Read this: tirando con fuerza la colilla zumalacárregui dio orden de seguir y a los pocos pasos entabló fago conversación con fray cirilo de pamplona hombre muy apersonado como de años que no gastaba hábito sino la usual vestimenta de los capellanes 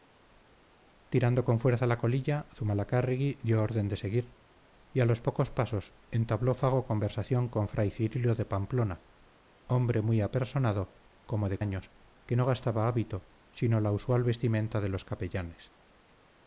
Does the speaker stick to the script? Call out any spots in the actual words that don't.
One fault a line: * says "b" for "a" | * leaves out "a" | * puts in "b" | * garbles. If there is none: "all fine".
all fine